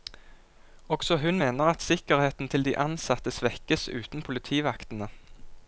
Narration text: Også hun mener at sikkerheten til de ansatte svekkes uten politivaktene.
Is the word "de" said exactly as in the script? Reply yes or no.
yes